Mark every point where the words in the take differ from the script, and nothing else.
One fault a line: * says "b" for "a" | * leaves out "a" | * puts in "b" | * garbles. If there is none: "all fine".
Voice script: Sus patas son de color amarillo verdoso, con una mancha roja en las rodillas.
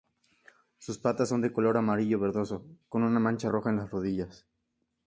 all fine